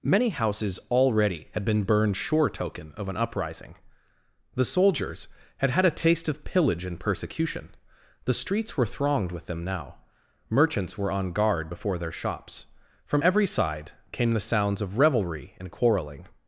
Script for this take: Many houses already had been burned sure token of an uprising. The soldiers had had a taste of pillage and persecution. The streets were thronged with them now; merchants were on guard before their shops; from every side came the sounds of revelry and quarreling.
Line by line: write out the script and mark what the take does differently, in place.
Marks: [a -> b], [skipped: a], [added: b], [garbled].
Many houses already had been burned sure token of an uprising. The soldiers had had a taste of pillage and persecution. The streets were thronged with them now; merchants were on guard before their shops; from every side came the sounds of revelry and quarreling.